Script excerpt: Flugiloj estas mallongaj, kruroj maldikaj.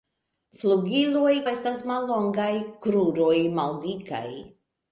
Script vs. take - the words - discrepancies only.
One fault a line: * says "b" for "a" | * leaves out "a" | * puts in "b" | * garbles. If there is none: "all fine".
all fine